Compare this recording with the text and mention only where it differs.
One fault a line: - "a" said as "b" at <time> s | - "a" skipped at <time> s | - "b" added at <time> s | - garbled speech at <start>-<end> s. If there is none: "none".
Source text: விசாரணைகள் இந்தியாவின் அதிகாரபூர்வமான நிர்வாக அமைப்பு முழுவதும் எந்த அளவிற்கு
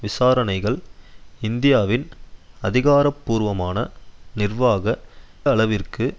- "அமைப்பு முழுவதும் எந்த" skipped at 4.8 s